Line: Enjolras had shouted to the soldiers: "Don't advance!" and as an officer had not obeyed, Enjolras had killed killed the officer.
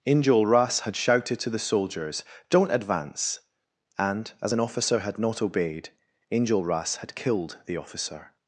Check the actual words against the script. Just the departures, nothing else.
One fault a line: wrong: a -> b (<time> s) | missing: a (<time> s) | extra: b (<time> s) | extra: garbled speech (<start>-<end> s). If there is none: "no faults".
missing: killed (7.6 s)